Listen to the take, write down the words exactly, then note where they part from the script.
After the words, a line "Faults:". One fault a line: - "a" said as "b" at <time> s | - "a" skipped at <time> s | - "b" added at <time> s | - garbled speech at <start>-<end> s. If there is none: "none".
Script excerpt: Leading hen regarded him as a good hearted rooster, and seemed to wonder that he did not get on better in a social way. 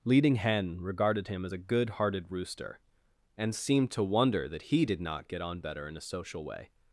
Leading hen regarded him as a good hearted rooster, and seemed to wonder that he did not get on better in a social way.
Faults:
none